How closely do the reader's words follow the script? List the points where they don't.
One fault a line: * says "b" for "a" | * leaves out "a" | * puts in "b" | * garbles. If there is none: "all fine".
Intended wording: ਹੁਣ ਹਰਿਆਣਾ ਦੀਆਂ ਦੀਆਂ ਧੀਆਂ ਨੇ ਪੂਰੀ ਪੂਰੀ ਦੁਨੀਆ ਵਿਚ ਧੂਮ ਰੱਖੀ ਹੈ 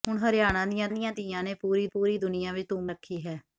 all fine